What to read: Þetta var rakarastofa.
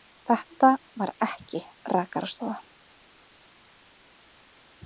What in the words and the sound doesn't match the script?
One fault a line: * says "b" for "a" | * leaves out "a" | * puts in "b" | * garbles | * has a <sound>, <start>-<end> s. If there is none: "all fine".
* puts in "ekki"